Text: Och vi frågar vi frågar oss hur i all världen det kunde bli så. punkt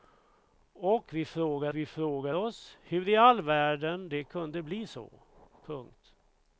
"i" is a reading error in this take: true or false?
false